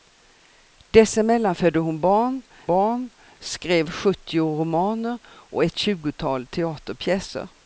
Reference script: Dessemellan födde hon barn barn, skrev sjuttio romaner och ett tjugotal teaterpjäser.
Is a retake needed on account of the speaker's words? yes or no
no